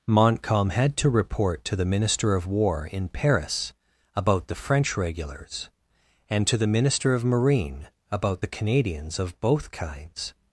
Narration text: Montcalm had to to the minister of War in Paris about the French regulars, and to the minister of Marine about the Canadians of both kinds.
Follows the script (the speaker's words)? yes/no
no